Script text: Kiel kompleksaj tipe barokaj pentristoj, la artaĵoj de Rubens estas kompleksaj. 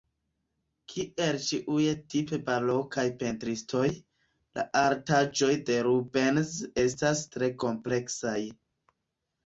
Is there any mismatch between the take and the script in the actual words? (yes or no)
yes